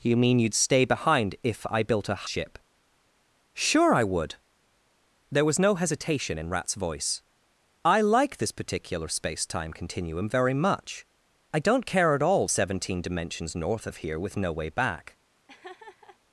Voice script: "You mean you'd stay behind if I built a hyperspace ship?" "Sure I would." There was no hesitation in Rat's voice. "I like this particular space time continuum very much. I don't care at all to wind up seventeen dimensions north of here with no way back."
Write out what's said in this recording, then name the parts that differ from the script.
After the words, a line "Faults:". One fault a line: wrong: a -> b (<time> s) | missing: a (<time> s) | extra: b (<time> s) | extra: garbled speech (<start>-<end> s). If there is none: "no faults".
"You mean you'd stay behind if I built a ship?" "Sure I would." There was no hesitation in Rat's voice. "I like this particular space time continuum very much. I don't care at all seventeen dimensions north of here with no way back."
Faults:
missing: hyperspace (2.2 s)
missing: to wind up (12.5 s)